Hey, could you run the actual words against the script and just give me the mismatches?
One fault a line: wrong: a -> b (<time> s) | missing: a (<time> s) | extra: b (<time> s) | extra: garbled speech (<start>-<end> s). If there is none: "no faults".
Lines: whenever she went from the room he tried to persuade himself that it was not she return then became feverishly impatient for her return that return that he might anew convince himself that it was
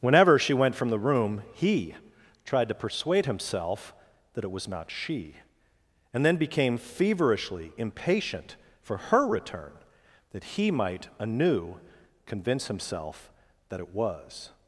wrong: return -> and (6.1 s)
missing: return that (10.4 s)